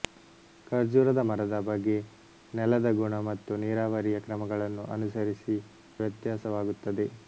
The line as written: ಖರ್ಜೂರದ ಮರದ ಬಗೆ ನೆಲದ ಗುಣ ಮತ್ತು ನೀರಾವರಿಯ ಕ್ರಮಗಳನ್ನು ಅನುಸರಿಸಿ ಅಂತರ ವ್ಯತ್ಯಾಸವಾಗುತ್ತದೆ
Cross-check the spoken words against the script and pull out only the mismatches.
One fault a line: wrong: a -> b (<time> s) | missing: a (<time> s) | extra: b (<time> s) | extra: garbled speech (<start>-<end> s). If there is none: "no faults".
missing: ಅಂತರ (5.6 s)